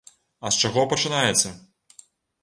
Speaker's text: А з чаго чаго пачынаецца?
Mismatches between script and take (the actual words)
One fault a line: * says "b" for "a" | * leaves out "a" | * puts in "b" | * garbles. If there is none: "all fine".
* leaves out "чаго"